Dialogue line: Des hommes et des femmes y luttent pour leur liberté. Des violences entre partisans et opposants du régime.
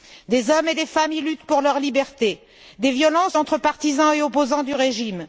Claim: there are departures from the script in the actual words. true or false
false